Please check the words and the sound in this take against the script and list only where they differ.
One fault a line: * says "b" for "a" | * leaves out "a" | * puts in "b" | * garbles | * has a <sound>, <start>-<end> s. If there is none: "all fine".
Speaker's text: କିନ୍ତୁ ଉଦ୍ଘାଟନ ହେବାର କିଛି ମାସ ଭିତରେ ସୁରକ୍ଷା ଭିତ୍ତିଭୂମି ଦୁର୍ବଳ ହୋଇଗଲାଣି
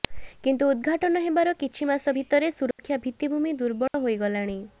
* has a dropout, 2.7-2.8 s
* has a dropout, 3.9-3.9 s